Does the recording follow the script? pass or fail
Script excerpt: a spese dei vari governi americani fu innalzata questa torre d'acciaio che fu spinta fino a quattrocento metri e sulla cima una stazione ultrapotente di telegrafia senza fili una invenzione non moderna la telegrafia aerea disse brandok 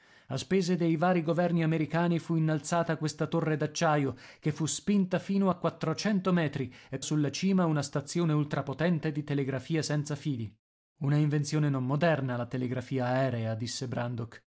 pass